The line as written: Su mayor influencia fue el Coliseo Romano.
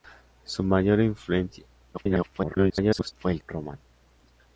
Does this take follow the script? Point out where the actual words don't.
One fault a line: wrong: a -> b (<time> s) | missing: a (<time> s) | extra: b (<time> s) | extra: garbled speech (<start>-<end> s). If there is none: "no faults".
extra: garbled speech (1.9-3.1 s)
missing: Coliseo (3.4 s)